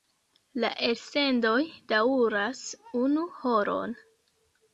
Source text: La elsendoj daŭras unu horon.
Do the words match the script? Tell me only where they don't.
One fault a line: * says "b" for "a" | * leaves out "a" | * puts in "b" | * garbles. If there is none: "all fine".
all fine